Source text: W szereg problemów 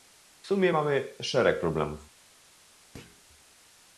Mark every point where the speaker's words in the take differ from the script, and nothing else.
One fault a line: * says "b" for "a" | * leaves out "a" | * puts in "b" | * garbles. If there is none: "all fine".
* puts in "sumie mamy"